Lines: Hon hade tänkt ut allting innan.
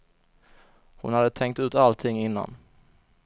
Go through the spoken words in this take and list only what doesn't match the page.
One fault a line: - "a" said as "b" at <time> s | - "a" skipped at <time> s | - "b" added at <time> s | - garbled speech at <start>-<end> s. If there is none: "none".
none